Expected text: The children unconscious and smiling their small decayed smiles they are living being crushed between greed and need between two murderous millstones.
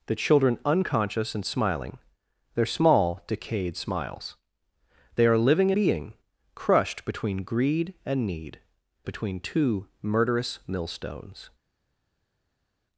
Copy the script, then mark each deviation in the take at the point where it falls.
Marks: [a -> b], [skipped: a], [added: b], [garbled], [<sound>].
The children unconscious and smiling their small decayed smiles they are living being crushed between greed and need between two murderous millstones.